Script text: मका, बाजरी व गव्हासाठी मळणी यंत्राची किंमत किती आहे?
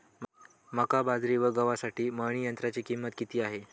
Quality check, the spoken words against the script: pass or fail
pass